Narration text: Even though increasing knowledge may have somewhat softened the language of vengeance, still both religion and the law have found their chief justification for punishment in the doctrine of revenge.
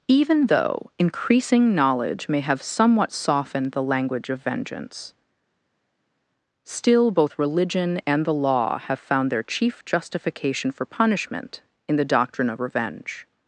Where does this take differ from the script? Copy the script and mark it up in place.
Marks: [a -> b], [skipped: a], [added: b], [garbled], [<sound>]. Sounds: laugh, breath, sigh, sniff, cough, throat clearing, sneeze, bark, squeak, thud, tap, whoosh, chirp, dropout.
Even though increasing knowledge may have somewhat softened the language of vengeance, still both religion and the law have found their chief justification for punishment in the doctrine of revenge.